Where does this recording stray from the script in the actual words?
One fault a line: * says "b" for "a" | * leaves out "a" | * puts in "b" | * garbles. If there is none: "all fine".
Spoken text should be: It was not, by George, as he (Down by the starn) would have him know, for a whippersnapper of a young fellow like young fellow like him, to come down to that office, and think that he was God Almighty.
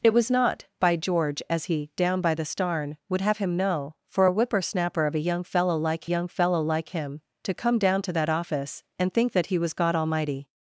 all fine